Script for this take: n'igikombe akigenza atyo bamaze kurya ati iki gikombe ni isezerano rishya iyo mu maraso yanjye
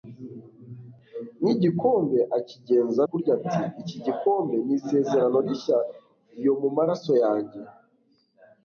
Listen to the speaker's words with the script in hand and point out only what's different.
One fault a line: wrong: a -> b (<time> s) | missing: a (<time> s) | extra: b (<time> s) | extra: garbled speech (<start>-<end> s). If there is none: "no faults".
missing: atyo bamaze (3.0 s)